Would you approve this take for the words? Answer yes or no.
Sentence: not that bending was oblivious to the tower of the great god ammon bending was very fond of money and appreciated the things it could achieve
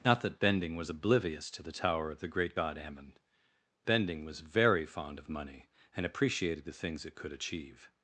yes